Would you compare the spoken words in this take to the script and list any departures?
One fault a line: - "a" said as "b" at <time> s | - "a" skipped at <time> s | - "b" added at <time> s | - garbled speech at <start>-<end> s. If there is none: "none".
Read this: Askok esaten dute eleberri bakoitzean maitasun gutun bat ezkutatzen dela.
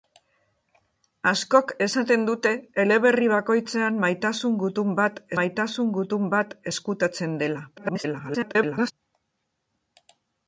- "maitasun gutun bat" added at 5.4 s
- garbled speech at 7.8-8.9 s